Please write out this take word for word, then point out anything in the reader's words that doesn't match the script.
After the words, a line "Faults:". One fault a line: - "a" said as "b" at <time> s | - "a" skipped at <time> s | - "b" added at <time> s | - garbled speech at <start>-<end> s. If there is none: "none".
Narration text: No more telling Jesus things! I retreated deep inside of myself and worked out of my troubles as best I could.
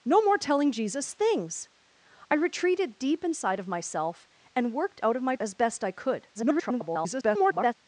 No more telling Jesus things! I retreated deep inside of myself and worked out of my as best I could. [garbled]
Faults:
- "troubles" skipped at 5.3 s
- garbled speech at 6.3-7.7 s